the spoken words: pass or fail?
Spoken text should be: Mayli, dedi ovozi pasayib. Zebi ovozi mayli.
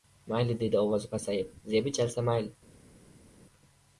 fail